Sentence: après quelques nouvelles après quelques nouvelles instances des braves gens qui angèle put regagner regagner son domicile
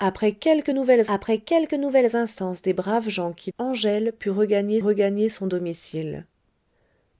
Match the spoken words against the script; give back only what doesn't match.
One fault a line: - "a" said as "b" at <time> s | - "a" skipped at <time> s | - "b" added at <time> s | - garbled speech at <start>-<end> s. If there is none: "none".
none